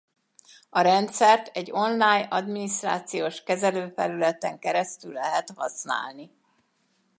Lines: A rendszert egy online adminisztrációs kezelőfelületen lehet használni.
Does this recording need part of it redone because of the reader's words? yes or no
yes